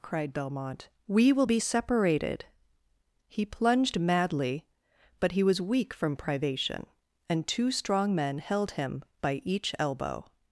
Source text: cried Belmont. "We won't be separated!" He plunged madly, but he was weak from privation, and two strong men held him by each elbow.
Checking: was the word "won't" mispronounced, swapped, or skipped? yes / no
yes